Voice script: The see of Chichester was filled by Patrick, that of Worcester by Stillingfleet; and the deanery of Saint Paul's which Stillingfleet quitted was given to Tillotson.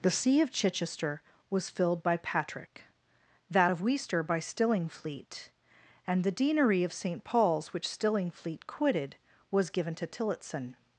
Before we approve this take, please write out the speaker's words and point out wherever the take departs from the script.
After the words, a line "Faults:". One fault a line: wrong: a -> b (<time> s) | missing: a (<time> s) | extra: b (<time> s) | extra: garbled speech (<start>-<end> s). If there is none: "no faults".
The see of Chichester was filled by Patrick, that of Worcester by Stillingfleet; and the deanery of Saint Paul's which Stillingfleet quitted was given to Tillotson.
Faults:
no faults